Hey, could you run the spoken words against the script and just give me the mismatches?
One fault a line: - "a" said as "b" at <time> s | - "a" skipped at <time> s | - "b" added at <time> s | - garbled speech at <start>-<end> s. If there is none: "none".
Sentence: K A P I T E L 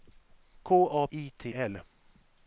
- "P" skipped at 1.1 s
- "E" skipped at 1.5 s